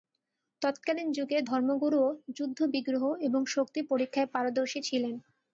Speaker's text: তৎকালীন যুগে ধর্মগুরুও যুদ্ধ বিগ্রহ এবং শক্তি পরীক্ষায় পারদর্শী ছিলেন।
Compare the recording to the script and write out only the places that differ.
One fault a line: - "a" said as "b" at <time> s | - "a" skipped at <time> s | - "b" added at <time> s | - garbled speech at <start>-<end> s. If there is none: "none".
none